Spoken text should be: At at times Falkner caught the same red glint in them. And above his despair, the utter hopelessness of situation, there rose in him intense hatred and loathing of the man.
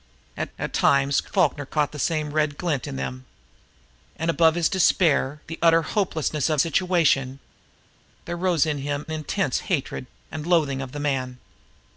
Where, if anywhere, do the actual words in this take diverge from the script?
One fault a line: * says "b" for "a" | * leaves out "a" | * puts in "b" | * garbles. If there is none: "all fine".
all fine